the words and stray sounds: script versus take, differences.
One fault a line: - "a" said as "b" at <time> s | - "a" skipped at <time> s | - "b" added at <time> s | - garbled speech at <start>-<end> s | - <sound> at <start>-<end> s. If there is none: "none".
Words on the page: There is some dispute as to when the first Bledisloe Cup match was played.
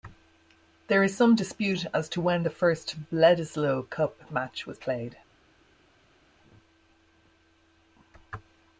none